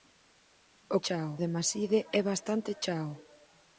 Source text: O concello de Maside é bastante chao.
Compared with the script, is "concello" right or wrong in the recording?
wrong